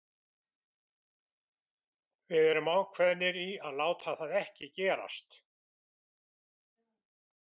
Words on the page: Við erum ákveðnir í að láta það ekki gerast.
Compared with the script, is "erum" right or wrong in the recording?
right